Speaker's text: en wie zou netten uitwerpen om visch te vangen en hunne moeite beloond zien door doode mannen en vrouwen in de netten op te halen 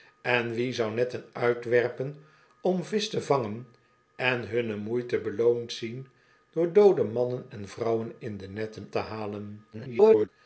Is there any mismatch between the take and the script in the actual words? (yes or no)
yes